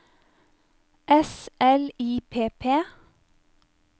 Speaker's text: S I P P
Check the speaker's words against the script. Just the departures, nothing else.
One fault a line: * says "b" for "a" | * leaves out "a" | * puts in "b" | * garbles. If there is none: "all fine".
* puts in "L"